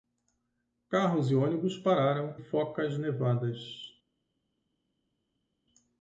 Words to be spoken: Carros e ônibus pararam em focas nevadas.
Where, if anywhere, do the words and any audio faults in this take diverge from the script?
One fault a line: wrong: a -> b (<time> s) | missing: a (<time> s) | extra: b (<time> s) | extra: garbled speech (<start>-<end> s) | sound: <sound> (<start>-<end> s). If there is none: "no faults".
missing: em (2.4 s)